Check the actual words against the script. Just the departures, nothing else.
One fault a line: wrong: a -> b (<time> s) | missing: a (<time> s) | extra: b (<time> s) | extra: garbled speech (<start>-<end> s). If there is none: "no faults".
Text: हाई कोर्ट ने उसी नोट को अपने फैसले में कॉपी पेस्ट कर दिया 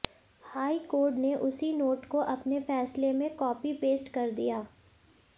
no faults